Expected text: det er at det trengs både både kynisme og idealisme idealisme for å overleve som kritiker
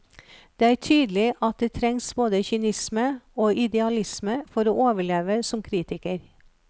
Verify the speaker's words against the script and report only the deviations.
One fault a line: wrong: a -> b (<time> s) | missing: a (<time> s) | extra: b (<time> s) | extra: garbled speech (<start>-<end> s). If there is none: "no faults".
extra: tydelig (0.8 s)
missing: både (2.4 s)
missing: idealisme (4.4 s)